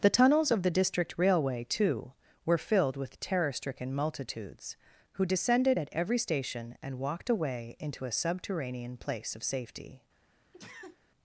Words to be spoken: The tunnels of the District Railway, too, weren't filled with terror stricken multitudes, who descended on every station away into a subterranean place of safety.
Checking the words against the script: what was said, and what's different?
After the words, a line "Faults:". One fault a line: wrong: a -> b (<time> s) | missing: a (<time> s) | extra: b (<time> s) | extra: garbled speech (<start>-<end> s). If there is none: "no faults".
The tunnels of the District Railway, too, were filled with terror stricken multitudes, who descended at every station and walked away into a subterranean place of safety.
Faults:
wrong: weren't -> were (2.4 s)
wrong: on -> at (5.8 s)
extra: and walked (6.8 s)